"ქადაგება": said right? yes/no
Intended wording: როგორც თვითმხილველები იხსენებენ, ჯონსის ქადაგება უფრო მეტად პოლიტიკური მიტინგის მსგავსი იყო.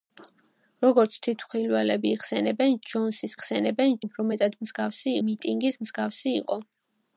no